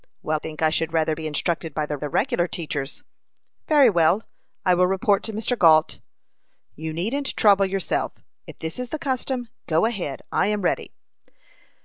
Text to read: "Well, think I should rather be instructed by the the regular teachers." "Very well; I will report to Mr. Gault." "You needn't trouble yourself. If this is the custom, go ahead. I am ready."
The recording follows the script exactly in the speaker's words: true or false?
true